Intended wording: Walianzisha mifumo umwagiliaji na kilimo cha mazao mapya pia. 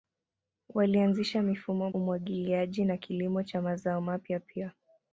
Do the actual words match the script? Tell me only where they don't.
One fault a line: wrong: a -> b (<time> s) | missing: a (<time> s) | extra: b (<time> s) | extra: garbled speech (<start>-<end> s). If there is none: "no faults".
no faults